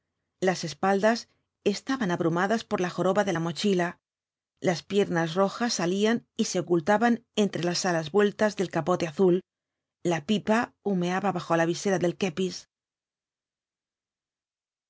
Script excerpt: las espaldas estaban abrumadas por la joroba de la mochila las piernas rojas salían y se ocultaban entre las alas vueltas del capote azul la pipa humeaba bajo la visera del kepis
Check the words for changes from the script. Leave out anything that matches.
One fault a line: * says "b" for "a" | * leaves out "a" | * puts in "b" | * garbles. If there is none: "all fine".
all fine